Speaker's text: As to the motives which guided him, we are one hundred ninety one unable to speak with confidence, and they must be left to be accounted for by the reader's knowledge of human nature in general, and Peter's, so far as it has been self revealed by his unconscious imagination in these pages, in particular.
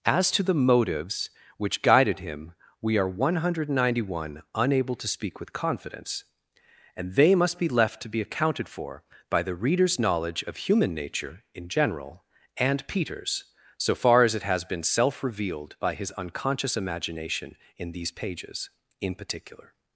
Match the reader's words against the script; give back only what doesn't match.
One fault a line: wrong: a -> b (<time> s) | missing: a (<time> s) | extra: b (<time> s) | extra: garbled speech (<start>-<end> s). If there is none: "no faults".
no faults